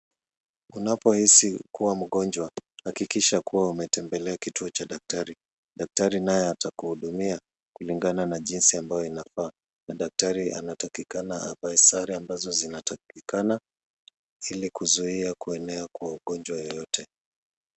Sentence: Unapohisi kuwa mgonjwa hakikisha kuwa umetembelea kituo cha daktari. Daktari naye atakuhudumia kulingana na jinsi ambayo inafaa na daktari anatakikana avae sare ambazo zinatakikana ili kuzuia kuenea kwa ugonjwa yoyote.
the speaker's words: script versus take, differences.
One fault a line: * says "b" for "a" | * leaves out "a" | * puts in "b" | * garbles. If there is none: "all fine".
all fine